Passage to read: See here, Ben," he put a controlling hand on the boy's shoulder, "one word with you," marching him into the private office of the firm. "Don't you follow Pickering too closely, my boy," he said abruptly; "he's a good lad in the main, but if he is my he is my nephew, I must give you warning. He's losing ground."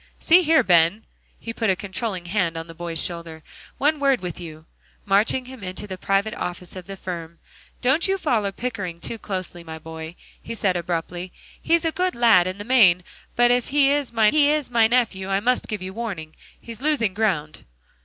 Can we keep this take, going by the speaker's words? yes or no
yes